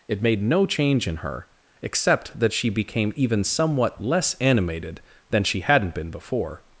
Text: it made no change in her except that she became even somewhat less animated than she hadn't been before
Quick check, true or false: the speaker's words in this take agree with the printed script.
true